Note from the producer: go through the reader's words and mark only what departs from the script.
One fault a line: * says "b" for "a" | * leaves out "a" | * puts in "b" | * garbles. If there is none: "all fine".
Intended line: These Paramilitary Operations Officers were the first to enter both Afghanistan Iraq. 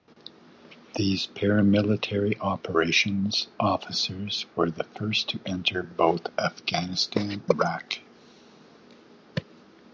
all fine